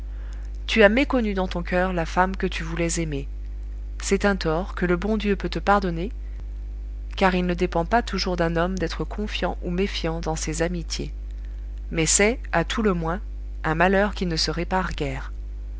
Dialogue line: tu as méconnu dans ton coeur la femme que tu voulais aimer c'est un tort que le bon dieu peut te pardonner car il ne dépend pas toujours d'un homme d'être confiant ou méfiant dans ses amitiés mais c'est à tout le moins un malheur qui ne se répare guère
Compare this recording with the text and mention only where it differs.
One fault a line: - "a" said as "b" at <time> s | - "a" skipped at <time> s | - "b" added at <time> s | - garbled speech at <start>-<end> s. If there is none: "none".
none